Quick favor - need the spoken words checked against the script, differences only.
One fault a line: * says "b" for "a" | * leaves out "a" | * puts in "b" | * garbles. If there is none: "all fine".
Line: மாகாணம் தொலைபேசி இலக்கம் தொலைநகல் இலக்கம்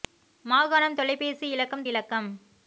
* leaves out "தொலைநகல்"